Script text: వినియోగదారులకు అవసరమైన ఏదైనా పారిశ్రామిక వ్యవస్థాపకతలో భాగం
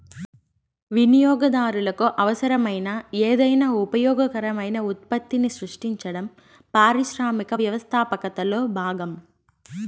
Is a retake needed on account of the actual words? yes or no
yes